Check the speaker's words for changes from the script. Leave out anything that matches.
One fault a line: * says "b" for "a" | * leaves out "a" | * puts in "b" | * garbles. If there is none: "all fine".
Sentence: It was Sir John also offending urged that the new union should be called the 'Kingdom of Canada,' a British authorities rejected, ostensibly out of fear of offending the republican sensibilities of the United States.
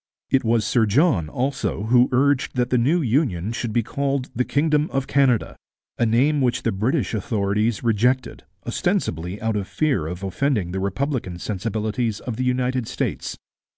* says "who" for "offending"
* puts in "name which the"